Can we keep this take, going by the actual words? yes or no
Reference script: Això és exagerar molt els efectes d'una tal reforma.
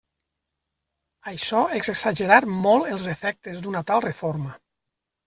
yes